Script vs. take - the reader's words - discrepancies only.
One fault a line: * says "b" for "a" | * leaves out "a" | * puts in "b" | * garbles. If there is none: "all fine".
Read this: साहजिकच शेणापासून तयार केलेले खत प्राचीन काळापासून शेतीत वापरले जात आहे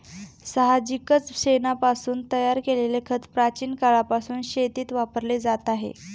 all fine